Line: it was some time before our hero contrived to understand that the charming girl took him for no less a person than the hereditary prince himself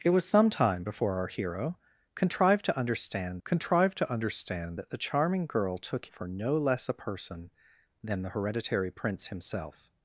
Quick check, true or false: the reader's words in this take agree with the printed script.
false